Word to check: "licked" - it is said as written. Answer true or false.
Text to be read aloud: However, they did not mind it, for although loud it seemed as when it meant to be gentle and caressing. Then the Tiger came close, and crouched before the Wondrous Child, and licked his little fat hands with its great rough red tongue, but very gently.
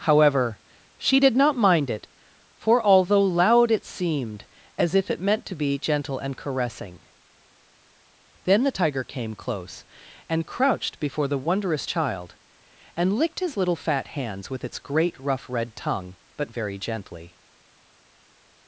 true